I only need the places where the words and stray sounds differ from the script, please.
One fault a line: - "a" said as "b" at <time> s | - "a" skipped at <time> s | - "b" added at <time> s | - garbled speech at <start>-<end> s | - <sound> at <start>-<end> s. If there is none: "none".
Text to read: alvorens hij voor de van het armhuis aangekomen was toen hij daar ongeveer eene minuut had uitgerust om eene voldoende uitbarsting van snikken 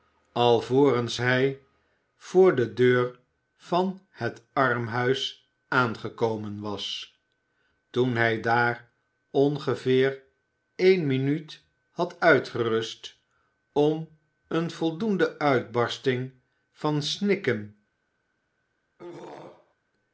- "deur" added at 2.7 s
- throat clearing at 19.0-19.7 s